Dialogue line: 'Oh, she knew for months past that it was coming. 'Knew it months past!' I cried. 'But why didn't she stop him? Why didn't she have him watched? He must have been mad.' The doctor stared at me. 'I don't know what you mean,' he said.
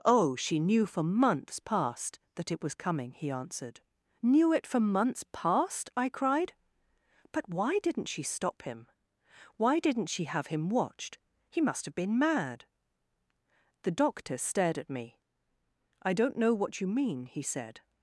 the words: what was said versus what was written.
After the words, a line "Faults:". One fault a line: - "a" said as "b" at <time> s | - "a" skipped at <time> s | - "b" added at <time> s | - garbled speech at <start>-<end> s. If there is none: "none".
'Oh, she knew for months past that it was coming,' he answered. 'Knew it for months past!' I cried. 'But why didn't she stop him? Why didn't she have him watched? He must have been mad.' The doctor stared at me. 'I don't know what you mean,' he said.
Faults:
- "he answered" added at 3.1 s
- "for" added at 4.7 s